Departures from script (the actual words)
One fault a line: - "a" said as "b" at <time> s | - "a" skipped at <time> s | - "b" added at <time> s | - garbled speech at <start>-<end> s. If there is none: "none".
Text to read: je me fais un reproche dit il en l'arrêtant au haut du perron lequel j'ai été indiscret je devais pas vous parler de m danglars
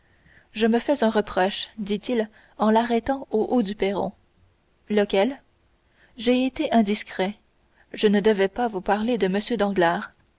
- "ne" added at 8.1 s